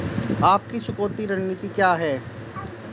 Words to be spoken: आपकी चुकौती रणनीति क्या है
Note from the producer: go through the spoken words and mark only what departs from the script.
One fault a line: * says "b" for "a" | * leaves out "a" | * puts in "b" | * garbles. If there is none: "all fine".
all fine